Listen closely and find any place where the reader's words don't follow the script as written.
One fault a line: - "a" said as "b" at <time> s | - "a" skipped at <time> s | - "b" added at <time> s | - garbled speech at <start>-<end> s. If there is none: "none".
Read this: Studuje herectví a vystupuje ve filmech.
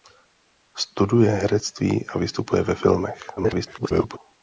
- garbled speech at 3.4-4.2 s